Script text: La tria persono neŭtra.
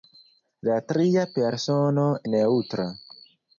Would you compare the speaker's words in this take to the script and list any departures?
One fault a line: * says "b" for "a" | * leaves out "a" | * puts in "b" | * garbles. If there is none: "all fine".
all fine